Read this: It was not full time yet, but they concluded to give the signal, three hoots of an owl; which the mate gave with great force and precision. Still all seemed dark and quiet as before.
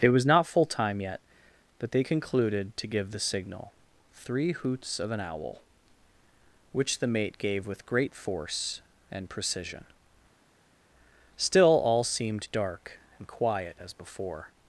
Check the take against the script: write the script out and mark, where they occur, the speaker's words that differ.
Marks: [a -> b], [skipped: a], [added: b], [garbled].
It was not full time yet, but they concluded to give the signal, three hoots of an owl; which the mate gave with great force and precision. Still all seemed dark and quiet as before.